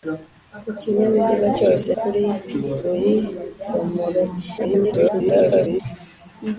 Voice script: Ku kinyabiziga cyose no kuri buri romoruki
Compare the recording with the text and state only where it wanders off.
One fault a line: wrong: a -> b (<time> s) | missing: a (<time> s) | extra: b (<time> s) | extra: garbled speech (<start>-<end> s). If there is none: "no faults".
missing: no (1.9 s)
extra: garbled speech (4.6-5.8 s)